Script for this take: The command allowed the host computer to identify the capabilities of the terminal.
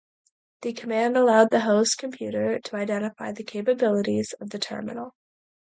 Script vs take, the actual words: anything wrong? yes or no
no